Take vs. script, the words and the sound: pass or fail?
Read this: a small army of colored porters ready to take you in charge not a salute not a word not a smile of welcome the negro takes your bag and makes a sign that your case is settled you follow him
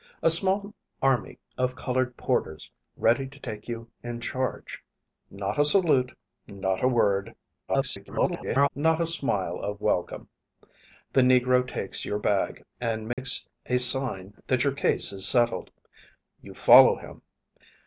fail